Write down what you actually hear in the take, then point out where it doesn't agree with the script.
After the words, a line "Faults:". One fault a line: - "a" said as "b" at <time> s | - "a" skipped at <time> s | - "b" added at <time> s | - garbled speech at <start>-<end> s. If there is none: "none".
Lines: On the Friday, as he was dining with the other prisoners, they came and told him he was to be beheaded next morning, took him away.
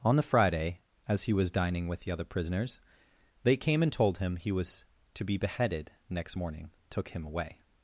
On the Friday, as he was dining with the other prisoners, they came and told him he was to be beheaded next morning, took him away.
Faults:
none